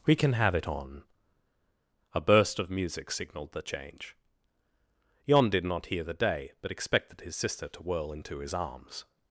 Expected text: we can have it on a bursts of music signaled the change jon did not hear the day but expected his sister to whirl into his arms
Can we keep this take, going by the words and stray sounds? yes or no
no